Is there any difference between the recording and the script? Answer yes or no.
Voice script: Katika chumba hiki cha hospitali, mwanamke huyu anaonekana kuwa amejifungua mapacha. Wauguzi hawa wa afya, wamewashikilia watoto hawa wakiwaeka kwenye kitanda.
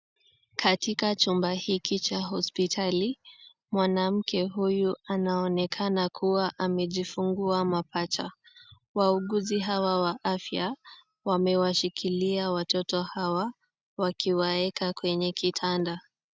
no